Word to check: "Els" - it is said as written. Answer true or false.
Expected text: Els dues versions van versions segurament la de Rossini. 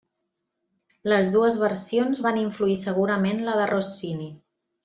false